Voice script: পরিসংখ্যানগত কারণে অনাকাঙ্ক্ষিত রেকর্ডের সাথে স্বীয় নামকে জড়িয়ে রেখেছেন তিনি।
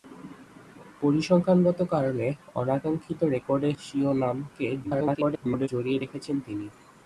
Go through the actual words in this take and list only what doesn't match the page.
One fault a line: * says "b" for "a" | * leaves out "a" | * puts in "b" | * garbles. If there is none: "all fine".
* leaves out "সাথে"
* garbles